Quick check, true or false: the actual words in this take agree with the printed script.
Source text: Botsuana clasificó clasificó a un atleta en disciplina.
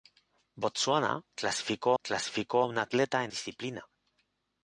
true